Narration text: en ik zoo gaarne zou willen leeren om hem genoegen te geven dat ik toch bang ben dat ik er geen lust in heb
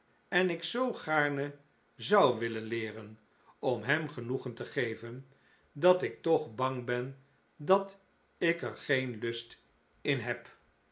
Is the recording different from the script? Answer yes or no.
no